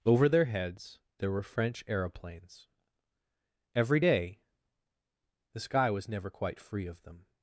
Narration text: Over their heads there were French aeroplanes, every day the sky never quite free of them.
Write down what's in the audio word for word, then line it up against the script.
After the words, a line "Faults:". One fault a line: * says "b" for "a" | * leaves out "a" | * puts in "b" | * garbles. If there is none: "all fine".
Over their heads there were French aeroplanes, every day the sky was never quite free of them.
Faults:
* puts in "was"